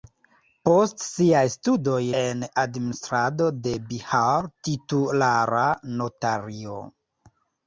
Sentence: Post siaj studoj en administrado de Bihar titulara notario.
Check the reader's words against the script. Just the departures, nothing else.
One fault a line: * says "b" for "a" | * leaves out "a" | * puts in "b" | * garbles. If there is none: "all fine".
all fine